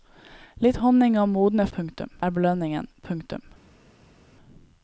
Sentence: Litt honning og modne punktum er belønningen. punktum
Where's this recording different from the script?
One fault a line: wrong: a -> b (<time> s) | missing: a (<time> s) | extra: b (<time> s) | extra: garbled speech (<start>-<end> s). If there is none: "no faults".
no faults